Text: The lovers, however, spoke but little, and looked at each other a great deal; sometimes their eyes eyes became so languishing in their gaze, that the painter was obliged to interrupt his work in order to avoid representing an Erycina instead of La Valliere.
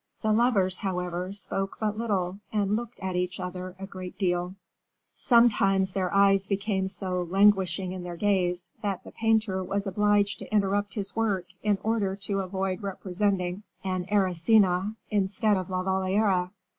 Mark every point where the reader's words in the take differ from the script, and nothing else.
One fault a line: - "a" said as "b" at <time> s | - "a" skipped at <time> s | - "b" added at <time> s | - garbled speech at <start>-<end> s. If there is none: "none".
- "eyes" skipped at 6.5 s